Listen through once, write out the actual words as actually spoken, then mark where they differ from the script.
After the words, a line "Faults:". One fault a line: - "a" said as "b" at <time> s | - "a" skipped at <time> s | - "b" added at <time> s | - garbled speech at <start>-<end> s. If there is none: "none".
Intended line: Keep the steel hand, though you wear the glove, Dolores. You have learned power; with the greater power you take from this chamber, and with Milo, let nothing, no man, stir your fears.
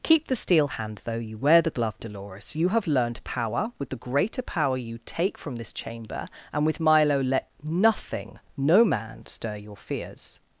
Keep the steel hand, though you wear the glove, Dolores. You have learned power; with the greater power you take from this chamber, and with Milo, let nothing, no man, stir your fears.
Faults:
none